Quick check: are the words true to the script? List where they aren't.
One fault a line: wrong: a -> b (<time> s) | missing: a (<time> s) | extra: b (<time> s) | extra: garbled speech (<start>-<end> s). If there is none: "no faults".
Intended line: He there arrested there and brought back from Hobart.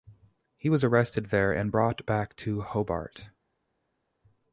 wrong: there -> was (0.7 s)
wrong: from -> to (2.4 s)